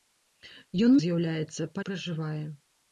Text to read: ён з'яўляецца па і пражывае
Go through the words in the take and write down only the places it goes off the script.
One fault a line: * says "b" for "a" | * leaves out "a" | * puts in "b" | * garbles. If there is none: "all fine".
all fine